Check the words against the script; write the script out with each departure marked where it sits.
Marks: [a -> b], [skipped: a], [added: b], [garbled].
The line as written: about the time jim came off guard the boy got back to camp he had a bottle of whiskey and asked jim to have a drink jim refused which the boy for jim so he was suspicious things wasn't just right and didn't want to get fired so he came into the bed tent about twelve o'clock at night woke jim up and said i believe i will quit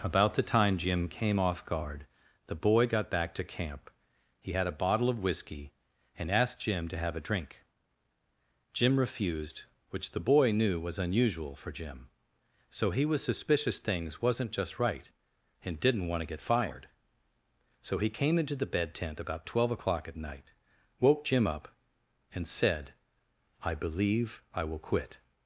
about the time jim came off guard the boy got back to camp he had a bottle of whiskey and asked jim to have a drink jim refused which the boy [added: knew was unusual] for jim so he was suspicious things wasn't just right and didn't want to get fired so he came into the bed tent about twelve o'clock at night woke jim up and said i believe i will quit